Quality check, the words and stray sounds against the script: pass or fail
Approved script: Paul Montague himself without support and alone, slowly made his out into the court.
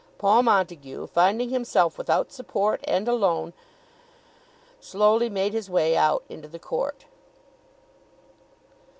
fail